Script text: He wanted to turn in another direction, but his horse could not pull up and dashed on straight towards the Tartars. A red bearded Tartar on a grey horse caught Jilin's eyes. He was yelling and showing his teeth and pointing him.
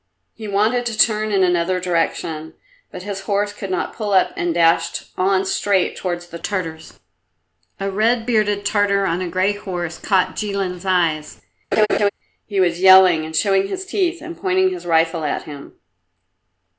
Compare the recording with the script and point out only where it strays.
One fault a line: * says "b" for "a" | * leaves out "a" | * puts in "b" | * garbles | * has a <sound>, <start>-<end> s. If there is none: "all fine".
* has a laugh, 11.7-12.1 s
* puts in "his rifle at"